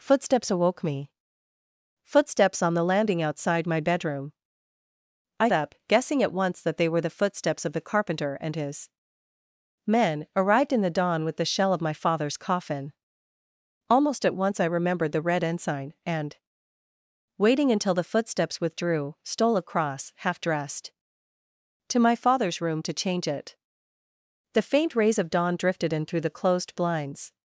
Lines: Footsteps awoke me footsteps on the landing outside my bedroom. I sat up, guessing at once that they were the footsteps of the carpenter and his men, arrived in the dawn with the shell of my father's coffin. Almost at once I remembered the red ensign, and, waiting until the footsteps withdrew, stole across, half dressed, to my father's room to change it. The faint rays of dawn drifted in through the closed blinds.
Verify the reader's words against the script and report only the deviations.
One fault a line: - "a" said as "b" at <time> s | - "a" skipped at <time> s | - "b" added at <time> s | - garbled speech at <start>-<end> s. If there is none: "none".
- "sat" skipped at 5.5 s